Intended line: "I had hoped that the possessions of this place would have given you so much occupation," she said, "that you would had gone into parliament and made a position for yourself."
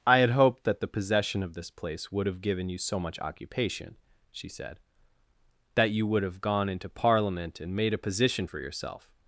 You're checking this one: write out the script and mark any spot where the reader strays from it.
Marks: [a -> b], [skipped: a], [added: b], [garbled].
"I had hoped that the [possessions -> possession] of this place would have given you so much occupation," she said, "that you would [had -> have] gone into parliament and made a position for yourself."